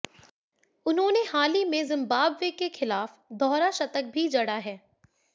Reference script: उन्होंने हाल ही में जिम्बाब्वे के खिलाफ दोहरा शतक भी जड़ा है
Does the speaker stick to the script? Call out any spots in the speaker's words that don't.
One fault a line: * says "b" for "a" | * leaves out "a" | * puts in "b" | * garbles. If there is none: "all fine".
all fine